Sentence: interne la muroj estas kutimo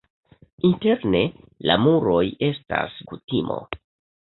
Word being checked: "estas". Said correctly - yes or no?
yes